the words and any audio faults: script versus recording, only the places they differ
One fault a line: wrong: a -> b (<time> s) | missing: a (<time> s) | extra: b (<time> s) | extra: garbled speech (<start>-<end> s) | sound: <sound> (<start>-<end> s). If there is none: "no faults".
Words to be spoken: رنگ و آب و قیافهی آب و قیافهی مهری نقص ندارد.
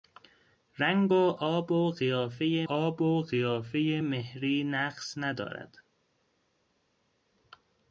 no faults